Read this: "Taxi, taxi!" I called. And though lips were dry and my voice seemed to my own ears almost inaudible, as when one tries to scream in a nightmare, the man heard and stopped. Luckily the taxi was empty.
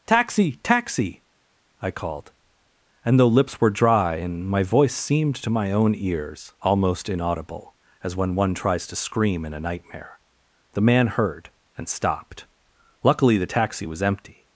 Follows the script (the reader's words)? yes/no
yes